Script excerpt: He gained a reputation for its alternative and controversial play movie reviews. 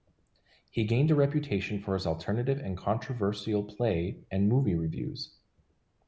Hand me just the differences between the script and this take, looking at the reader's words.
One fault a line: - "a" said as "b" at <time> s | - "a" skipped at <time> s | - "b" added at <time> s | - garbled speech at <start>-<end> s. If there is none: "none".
- "its" said as "his" at 1.9 s
- "and" added at 4.3 s